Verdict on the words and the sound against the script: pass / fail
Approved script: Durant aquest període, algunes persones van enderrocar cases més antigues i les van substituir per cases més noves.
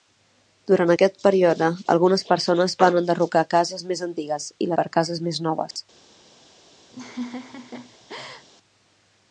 fail